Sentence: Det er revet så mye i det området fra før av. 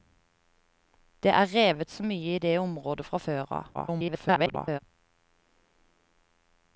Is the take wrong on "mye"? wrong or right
right